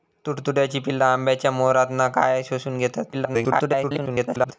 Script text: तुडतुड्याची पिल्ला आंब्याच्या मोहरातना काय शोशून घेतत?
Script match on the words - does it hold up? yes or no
no